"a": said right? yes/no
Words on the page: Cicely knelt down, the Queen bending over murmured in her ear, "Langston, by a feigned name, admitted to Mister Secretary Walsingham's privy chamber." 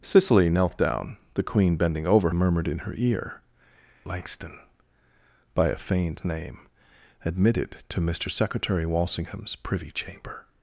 yes